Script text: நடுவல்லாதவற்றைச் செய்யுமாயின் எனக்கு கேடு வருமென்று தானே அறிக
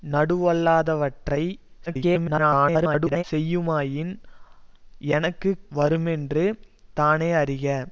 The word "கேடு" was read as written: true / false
false